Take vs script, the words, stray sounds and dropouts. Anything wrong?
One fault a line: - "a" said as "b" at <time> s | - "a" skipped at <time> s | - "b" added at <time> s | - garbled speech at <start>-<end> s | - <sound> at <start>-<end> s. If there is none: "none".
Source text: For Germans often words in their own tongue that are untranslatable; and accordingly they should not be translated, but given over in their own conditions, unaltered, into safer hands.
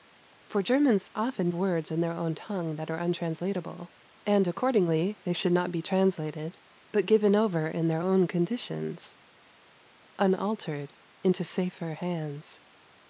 none